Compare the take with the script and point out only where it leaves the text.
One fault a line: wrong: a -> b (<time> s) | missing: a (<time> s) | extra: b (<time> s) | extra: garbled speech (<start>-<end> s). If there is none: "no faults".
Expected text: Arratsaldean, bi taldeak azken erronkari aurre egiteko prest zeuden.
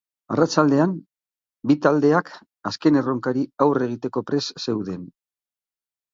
no faults